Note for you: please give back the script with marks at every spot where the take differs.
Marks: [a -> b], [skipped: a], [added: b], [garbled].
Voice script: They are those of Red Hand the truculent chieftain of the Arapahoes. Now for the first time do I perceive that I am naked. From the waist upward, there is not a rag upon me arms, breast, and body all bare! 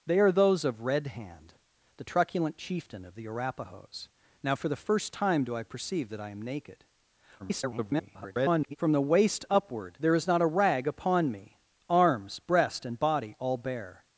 They are those of Red Hand the truculent chieftain of the Arapahoes. Now for the first time do I perceive that I am naked. [garbled] From the waist upward, there is not a rag upon me arms, breast, and body all bare!